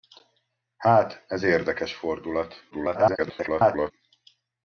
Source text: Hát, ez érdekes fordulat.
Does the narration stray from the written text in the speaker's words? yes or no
yes